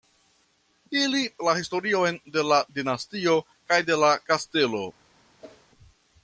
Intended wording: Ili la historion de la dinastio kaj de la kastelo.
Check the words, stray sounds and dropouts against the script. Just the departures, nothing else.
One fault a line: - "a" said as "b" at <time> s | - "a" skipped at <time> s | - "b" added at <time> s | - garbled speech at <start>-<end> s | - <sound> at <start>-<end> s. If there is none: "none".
- whoosh at 5.4-5.7 s